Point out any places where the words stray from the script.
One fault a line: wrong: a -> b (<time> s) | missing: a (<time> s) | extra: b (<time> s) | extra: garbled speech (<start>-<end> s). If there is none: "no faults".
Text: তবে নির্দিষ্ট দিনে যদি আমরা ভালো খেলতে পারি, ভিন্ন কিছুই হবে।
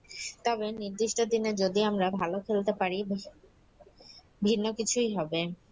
no faults